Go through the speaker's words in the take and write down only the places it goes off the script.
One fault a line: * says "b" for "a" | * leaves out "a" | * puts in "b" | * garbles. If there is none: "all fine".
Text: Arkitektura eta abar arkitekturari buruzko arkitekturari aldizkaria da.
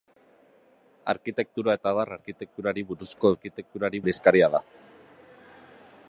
all fine